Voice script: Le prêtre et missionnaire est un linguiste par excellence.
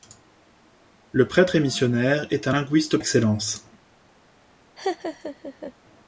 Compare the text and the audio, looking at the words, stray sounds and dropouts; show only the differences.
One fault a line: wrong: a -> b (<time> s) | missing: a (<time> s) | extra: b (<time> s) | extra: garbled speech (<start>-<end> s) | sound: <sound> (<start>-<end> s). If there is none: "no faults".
missing: par (3.0 s)
sound: laugh (4.8-5.7 s)